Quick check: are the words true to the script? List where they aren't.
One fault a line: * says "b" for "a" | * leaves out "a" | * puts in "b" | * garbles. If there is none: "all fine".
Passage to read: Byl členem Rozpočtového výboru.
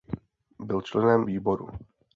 * leaves out "Rozpočtového"